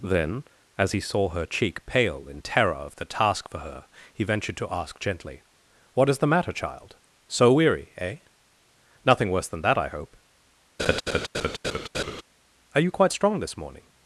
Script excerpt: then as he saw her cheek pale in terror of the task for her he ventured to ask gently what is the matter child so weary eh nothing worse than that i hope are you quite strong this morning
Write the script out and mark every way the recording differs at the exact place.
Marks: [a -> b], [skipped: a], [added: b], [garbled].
then as he saw her cheek pale in terror of the task for her he ventured to ask gently what is the matter child so weary eh nothing worse than that i hope are you quite strong this morning